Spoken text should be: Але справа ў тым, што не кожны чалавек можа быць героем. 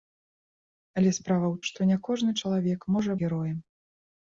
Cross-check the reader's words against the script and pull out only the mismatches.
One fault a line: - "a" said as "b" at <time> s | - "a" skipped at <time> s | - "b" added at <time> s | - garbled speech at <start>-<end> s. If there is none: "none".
- "тым" skipped at 1.6 s
- "быць" skipped at 3.1 s